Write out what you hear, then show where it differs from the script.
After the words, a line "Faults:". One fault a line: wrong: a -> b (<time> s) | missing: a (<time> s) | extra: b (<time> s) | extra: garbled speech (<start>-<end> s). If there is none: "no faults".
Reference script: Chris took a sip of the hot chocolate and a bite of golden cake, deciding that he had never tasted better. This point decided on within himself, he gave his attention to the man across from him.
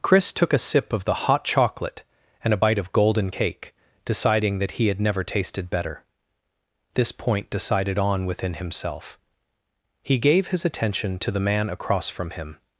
Chris took a sip of the hot chocolate and a bite of golden cake, deciding that he had never tasted better. This point decided on within himself, he gave his attention to the man across from him.
Faults:
no faults